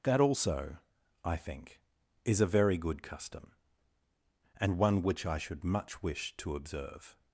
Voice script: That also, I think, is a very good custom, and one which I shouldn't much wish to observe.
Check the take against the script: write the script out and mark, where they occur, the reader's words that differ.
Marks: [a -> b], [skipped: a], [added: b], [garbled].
That also, I think, is a very good custom, and one which I [shouldn't -> should] much wish to observe.